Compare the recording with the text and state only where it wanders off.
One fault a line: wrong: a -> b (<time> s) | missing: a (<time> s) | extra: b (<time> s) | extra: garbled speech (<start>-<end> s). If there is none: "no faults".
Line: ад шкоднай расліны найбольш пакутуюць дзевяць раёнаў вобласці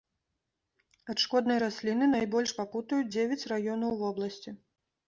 no faults